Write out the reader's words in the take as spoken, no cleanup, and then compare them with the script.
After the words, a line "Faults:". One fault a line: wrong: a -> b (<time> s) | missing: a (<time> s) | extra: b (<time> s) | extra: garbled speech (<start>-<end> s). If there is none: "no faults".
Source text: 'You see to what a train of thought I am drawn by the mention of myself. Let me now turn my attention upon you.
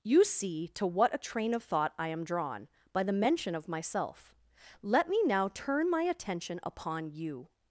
'You see to what a train of thought I am drawn by the mention of myself. Let me now turn my attention upon you.
Faults:
no faults